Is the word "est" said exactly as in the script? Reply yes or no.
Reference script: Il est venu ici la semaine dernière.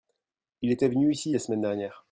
no